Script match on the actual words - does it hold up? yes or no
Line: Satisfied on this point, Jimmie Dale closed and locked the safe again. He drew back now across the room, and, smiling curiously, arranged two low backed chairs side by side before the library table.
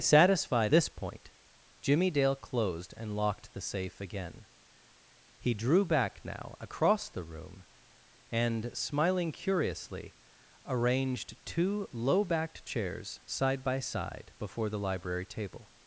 no